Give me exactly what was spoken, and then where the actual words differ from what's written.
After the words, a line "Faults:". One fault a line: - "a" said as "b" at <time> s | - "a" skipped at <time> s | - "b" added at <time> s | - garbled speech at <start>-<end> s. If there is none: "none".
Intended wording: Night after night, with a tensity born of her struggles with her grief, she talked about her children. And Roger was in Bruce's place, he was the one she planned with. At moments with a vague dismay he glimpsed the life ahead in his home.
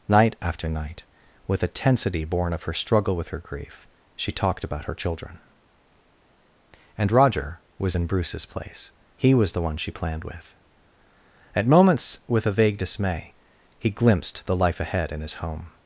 Night after night, with a tensity born of her struggle with her grief, she talked about her children. And Roger was in Bruce's place, he was the one she planned with. At moments with a vague dismay he glimpsed the life ahead in his home.
Faults:
- "struggles" said as "struggle" at 2.7 s